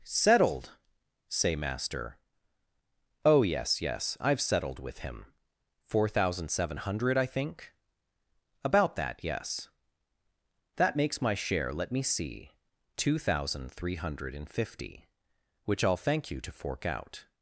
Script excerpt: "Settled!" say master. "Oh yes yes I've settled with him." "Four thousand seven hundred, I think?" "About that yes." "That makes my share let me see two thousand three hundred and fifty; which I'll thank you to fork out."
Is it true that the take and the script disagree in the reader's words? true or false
false